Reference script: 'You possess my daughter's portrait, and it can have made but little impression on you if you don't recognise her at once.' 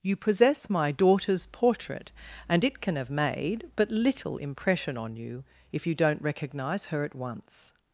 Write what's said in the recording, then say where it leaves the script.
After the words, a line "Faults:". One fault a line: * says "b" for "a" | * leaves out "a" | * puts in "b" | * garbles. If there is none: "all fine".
'You possess my daughter's portrait, and it can have made but little impression on you if you don't recognise her at once.'
Faults:
all fine